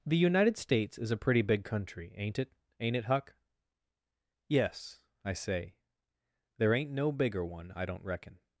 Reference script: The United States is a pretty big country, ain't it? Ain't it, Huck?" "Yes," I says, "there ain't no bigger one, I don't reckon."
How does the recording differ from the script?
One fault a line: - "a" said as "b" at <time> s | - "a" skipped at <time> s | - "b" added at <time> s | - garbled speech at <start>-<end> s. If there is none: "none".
- "says" said as "say" at 5.3 s